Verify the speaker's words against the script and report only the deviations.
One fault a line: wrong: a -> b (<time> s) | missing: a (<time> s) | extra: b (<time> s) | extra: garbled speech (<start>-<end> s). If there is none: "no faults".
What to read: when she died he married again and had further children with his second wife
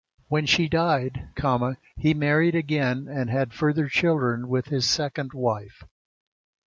no faults